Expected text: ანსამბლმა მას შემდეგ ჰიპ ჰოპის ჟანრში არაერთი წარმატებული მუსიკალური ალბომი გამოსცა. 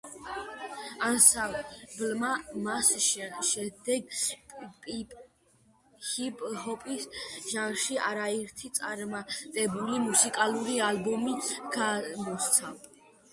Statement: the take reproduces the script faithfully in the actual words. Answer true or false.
true